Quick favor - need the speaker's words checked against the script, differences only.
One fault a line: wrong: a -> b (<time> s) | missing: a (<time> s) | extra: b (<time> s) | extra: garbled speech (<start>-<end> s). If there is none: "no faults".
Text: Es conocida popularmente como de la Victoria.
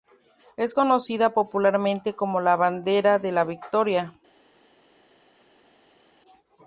extra: la Bandera (2.4 s)